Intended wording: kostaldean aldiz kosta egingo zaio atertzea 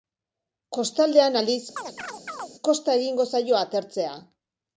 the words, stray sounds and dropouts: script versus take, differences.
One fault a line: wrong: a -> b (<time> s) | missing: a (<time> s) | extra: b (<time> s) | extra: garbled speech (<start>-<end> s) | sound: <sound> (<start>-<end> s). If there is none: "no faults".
sound: chirp (1.8-2.5 s)